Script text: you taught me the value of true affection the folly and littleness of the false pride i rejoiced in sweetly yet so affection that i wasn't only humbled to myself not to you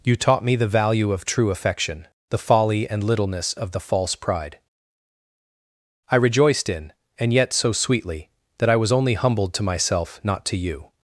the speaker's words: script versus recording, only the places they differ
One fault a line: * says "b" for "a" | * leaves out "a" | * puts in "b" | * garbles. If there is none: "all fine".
* says "and" for "sweetly"
* says "sweetly" for "affection"
* says "was" for "wasn't"